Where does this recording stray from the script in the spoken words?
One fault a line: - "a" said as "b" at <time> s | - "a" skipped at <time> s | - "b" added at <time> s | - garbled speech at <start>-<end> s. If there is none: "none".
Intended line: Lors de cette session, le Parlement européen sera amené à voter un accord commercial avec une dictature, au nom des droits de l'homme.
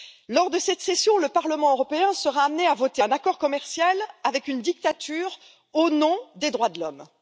none